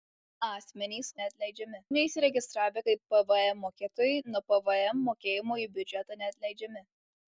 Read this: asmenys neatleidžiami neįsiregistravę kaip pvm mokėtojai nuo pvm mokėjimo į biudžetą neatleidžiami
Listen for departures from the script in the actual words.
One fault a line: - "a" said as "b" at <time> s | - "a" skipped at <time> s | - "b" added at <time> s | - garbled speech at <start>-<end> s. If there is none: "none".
none